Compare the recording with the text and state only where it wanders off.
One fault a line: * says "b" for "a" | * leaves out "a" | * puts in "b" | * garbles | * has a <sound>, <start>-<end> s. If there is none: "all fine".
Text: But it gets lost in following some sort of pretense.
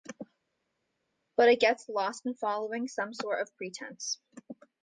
all fine